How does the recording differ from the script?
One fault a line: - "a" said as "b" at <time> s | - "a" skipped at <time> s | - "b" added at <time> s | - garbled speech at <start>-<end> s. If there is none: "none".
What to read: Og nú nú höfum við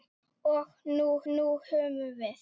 none